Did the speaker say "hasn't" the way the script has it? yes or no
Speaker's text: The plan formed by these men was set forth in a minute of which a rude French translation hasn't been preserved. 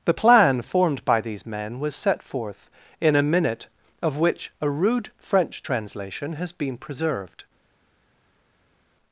no